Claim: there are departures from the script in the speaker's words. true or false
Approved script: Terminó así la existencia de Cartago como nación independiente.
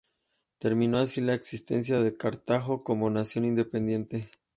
false